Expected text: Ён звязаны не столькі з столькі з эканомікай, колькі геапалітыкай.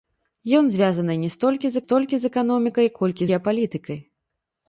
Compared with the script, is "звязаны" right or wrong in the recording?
right